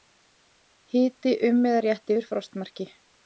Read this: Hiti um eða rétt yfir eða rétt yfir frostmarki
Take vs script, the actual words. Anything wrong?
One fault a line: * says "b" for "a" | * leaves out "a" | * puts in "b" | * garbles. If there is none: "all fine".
* leaves out "eða rétt yfir"